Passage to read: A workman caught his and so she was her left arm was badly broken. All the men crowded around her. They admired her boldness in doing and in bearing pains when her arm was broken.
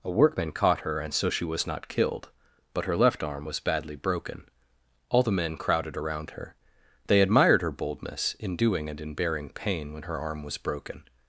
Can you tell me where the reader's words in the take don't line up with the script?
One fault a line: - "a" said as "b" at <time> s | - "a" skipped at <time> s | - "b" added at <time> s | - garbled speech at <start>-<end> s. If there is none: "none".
- "his" said as "her" at 0.8 s
- "not killed but" added at 1.7 s
- "pains" said as "pain" at 9.5 s